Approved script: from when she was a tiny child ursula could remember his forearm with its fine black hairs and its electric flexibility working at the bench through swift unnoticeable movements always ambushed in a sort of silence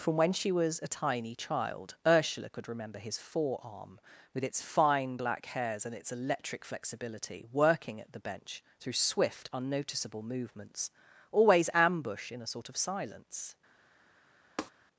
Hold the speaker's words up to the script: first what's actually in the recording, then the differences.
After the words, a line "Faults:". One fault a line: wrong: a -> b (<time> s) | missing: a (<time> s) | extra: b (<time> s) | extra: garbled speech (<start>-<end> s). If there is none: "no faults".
from when she was a tiny child ursula could remember his forearm with its fine black hairs and its electric flexibility working at the bench through swift unnoticeable movements always ambush in a sort of silence
Faults:
wrong: ambushed -> ambush (11.7 s)